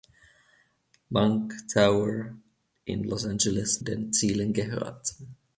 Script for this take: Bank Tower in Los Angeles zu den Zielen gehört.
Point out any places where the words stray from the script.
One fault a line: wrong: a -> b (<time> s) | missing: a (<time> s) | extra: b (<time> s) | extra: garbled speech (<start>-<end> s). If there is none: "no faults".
missing: zu (3.8 s)